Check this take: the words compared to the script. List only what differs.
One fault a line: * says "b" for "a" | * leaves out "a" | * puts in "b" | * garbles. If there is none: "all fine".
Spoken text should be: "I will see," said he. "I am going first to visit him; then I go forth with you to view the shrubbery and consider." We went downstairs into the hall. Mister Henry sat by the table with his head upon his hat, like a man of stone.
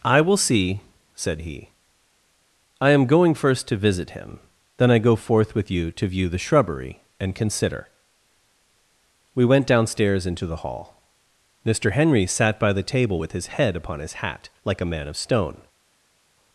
all fine